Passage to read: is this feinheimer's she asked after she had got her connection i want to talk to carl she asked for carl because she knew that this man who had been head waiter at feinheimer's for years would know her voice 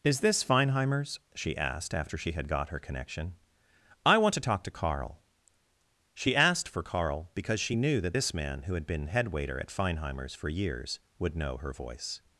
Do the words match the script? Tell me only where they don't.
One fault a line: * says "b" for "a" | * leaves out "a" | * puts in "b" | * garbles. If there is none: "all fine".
all fine